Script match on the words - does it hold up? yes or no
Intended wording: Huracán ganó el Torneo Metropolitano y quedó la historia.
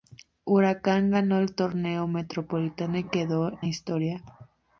yes